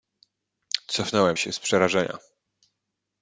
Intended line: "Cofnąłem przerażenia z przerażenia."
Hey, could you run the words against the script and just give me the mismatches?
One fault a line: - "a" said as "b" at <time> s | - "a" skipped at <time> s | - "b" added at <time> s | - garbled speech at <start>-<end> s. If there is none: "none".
- "przerażenia" said as "się" at 1.4 s